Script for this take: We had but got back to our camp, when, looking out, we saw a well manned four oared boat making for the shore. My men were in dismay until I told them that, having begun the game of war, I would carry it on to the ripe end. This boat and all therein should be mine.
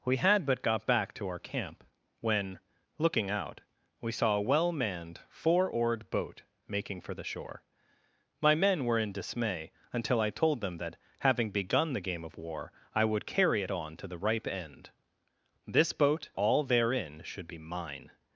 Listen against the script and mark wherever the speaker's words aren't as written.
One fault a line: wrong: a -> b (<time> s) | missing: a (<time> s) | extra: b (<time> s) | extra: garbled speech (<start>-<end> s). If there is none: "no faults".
missing: and (16.3 s)